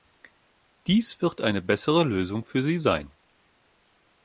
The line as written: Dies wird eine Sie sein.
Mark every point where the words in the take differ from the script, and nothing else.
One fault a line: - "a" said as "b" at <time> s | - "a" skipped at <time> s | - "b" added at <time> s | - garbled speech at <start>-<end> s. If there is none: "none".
- "bessere Lösung für" added at 1.6 s